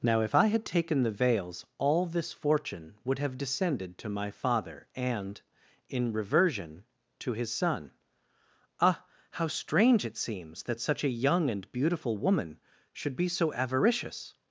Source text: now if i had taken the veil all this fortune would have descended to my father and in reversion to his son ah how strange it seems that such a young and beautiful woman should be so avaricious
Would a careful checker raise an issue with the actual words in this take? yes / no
yes